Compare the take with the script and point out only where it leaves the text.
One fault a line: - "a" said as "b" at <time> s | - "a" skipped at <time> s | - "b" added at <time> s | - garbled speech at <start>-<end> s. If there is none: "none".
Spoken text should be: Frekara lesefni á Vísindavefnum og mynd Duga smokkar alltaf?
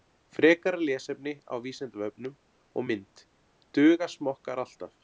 none